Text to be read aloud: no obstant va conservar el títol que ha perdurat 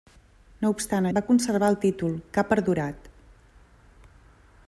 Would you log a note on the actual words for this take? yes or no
no